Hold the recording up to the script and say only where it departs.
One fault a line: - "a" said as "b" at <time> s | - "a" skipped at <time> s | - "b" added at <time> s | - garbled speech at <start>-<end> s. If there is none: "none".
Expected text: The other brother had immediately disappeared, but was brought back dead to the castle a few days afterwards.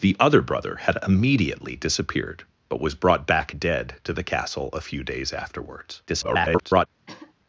- garbled speech at 6.1-6.9 s